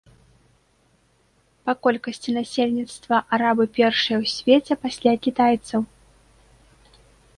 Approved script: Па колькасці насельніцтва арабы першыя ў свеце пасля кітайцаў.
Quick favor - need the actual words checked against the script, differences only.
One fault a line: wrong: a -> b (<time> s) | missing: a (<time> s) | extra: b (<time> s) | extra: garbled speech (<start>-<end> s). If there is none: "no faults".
no faults